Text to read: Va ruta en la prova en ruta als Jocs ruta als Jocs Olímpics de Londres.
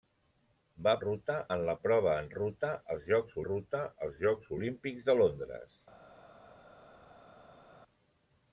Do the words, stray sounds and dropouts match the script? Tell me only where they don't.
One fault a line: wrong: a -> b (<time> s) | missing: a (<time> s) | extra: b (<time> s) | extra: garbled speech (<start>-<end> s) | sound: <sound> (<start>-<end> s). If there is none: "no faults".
no faults